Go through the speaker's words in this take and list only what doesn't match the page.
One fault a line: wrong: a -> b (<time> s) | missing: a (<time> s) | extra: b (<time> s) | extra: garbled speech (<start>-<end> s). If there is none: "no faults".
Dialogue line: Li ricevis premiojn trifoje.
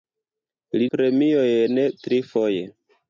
missing: ricevis (0.8 s)